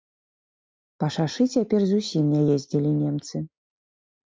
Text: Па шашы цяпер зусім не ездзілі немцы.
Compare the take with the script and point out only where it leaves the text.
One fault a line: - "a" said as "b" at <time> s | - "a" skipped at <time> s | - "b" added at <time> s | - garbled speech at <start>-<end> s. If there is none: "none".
none